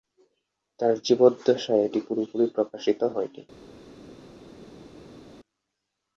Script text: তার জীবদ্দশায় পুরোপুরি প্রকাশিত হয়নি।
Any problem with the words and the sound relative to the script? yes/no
yes